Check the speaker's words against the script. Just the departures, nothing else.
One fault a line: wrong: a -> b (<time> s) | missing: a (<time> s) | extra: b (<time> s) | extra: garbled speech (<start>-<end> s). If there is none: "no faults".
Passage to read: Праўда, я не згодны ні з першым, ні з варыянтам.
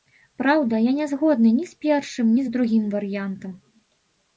extra: другім (2.6 s)